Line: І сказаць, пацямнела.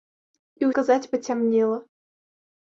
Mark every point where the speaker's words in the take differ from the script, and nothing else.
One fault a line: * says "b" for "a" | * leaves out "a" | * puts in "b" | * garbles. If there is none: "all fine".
all fine